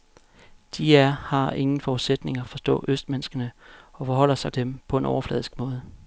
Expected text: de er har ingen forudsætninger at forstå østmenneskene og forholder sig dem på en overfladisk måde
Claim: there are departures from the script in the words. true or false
false